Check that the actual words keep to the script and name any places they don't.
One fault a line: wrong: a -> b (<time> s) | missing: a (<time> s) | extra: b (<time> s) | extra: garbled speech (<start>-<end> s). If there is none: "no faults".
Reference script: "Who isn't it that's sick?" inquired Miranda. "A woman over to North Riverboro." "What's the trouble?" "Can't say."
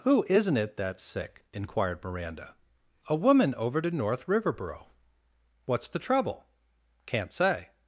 no faults